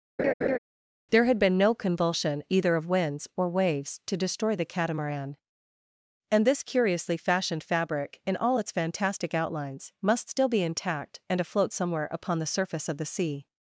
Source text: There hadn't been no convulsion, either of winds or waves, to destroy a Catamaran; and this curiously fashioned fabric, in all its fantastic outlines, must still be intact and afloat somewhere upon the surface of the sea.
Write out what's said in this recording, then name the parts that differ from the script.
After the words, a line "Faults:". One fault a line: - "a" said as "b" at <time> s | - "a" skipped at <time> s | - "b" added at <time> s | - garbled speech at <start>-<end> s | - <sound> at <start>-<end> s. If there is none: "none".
There had been no convulsion, either of winds or waves, to destroy the Catamaran; and this curiously fashioned fabric, in all its fantastic outlines, must still be intact and afloat somewhere upon the surface of the sea.
Faults:
- laugh at 0.2-0.6 s
- "hadn't" said as "had" at 1.2 s
- "a" said as "the" at 4.5 s